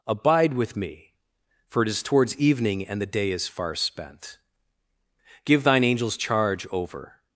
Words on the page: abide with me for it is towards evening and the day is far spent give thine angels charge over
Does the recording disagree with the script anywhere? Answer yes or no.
no